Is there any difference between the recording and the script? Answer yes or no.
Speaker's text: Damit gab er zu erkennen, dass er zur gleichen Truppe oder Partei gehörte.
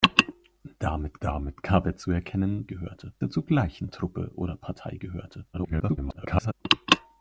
yes